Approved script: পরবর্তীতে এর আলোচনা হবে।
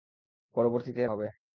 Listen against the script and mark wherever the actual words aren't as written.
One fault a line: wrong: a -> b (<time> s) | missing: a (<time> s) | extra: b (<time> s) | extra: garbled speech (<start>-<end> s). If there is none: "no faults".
missing: আলোচনা (1.1 s)